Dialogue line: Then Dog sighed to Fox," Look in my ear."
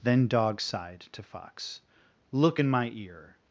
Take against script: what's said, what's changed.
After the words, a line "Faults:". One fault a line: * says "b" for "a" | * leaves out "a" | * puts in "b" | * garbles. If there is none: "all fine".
Then Dog sighed to Fox," Look in my ear."
Faults:
all fine